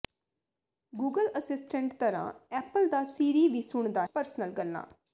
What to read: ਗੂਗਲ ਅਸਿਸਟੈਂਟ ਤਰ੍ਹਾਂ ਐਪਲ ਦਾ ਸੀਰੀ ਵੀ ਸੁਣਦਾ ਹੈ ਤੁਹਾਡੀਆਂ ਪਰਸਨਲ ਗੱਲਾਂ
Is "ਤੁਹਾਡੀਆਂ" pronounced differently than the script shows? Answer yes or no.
yes